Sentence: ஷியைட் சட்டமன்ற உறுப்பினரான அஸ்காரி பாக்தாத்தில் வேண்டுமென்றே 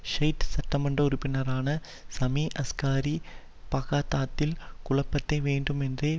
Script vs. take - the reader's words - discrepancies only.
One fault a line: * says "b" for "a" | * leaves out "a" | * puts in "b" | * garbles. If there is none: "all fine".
* puts in "சமி"
* puts in "குழப்பத்தை"